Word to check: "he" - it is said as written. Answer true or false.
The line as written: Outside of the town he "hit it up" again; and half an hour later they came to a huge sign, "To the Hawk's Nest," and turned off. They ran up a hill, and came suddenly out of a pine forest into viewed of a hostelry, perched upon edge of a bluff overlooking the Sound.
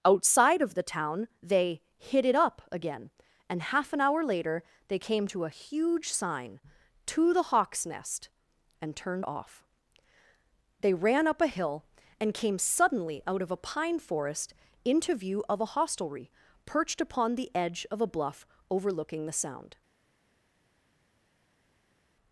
false